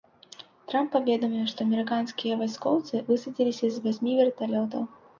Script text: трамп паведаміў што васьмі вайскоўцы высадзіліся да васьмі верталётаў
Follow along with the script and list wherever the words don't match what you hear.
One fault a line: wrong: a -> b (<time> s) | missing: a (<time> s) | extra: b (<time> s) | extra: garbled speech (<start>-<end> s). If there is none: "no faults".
wrong: васьмі -> амерыканскія (1.7 s)
wrong: да -> з (3.8 s)